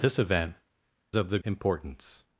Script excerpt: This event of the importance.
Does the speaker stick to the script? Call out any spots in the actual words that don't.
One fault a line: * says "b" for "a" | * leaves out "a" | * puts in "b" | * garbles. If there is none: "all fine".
all fine